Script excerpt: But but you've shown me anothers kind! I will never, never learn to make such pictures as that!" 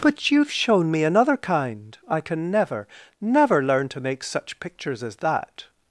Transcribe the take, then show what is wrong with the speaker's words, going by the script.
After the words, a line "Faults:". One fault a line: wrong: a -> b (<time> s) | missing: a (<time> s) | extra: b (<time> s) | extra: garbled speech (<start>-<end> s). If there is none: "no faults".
But you've shown me another kind! I can never, never learn to make such pictures as that!"
Faults:
missing: but (0.3 s)
wrong: anothers -> another (1.0 s)
wrong: will -> can (2.2 s)